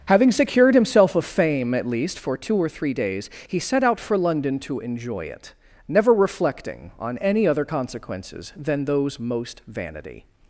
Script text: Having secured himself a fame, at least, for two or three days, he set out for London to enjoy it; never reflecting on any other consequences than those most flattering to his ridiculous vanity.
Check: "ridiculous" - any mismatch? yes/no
yes